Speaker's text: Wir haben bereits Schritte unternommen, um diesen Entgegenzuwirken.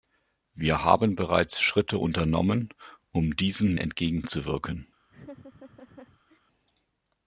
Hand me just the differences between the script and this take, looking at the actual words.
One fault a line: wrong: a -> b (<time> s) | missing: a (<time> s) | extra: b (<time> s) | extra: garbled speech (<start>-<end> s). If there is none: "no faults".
no faults